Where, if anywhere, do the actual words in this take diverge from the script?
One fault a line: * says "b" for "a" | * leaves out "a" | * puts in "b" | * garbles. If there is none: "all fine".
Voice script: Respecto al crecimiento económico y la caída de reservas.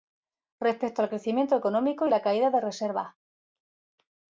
all fine